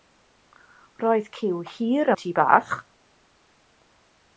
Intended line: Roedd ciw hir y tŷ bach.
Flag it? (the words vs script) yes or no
no